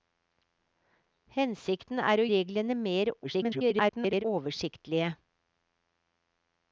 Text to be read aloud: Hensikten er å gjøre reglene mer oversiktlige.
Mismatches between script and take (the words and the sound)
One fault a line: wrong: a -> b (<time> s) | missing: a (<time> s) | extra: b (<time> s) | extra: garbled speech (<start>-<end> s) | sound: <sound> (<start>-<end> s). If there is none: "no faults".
missing: gjøre (2.2 s)
extra: garbled speech (3.2-4.2 s)